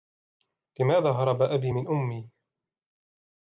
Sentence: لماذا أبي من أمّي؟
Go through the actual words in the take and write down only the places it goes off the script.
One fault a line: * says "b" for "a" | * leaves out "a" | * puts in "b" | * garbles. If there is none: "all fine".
* puts in "هرب"